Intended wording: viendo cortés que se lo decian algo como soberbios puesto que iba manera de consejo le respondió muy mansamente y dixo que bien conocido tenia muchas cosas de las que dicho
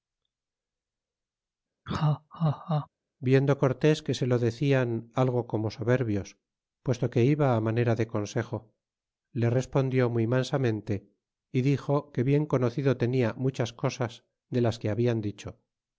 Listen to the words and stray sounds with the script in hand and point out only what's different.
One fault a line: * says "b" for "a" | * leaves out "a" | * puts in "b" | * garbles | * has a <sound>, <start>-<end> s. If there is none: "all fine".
* has a laugh, 1.9-2.9 s
* puts in "hablan"